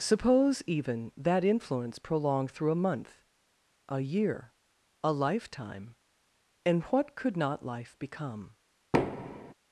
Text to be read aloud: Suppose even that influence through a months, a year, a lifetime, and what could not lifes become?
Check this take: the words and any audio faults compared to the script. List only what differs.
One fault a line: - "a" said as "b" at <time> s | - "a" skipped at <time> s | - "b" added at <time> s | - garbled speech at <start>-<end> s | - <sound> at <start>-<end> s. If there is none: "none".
- "prolonged" added at 2.0 s
- "months" said as "month" at 2.8 s
- "lifes" said as "life" at 7.7 s
- thud at 8.9-9.5 s